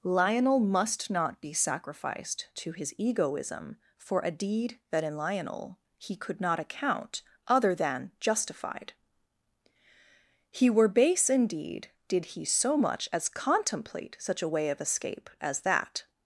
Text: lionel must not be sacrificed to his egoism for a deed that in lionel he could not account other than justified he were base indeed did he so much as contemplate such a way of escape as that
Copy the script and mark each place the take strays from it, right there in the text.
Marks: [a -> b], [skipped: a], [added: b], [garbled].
lionel must not be sacrificed to his egoism for a deed that in lionel he could not account other than justified he were base indeed did he so much as contemplate such a way of escape as that